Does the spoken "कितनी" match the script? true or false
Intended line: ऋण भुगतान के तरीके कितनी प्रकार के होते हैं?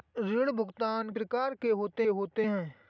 false